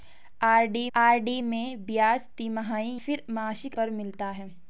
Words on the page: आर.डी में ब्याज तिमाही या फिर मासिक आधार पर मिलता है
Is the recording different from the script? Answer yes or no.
yes